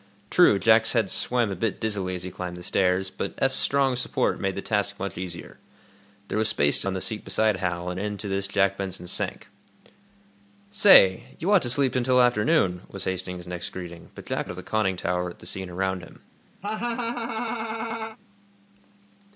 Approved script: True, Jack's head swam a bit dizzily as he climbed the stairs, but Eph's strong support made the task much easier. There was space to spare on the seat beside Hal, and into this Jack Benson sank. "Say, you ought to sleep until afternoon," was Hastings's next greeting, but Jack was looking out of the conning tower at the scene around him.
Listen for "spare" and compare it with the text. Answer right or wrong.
wrong